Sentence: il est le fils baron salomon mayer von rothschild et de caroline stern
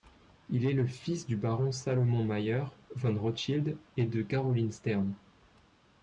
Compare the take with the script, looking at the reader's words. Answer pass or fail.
fail